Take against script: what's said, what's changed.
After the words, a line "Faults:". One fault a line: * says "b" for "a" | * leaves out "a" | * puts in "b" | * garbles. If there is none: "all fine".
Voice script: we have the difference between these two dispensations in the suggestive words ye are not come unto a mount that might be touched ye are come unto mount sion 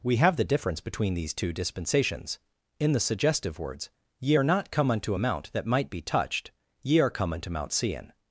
we have the difference between these two dispensations in the suggestive words ye are not come unto a mount that might be touched ye are come unto mount sion
Faults:
all fine